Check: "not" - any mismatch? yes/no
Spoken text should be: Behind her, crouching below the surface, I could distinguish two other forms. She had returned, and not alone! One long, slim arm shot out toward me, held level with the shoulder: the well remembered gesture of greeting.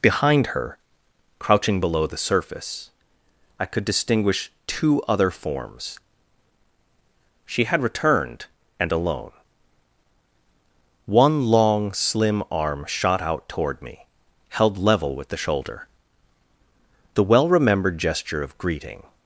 yes